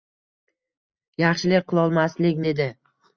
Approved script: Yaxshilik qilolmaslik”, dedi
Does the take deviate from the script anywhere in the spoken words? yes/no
no